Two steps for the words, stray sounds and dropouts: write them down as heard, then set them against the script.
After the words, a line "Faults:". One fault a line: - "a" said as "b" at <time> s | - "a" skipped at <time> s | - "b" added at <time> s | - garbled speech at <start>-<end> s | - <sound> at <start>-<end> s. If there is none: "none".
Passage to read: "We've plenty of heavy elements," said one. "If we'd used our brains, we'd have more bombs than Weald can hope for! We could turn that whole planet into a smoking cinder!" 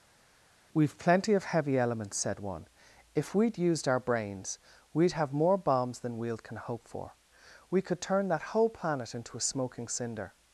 "We've plenty of heavy elements," said one. "If we'd used our brains, we'd have more bombs than Weald can hope for! We could turn that whole planet into a smoking cinder!"
Faults:
none